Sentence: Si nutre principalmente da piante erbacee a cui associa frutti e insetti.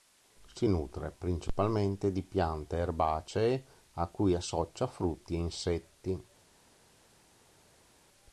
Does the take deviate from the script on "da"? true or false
true